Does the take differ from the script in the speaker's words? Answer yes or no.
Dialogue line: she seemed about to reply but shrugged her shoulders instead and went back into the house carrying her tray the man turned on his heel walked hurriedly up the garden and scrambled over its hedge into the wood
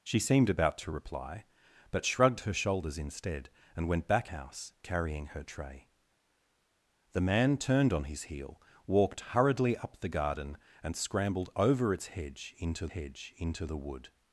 yes